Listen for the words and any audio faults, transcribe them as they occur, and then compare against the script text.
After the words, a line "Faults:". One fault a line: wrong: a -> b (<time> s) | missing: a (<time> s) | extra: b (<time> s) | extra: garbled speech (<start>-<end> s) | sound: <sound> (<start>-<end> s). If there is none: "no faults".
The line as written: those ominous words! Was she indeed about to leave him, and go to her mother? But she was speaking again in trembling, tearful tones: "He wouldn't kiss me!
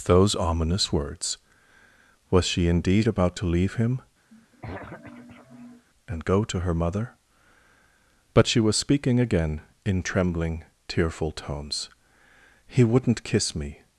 those ominous words! Was she indeed about to leave him, and go to her mother? But she was speaking again in trembling, tearful tones: "He wouldn't kiss me!
Faults:
sound: throat clearing (4.3-5.9 s)